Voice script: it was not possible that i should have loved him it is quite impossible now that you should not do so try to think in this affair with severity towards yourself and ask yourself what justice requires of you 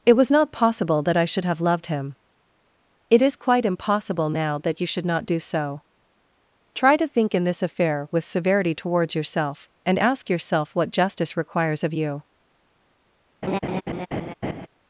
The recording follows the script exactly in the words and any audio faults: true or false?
false